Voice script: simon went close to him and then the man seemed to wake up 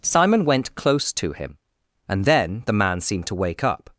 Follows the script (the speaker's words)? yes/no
yes